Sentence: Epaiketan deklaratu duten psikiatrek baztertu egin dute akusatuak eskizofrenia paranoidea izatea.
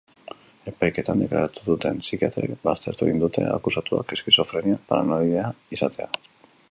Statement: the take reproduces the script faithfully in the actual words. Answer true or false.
true